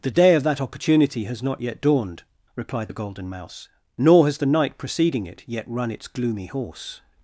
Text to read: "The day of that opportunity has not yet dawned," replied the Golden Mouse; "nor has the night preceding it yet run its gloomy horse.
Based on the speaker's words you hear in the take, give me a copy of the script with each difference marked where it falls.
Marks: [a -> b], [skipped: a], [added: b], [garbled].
"The day of that opportunity has not yet dawned," replied the Golden Mouse; "nor has the night preceding it yet run its gloomy horse.